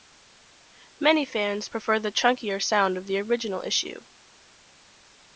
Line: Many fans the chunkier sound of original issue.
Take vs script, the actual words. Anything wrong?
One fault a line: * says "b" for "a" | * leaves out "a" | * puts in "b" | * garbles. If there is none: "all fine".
* puts in "prefer"
* puts in "the"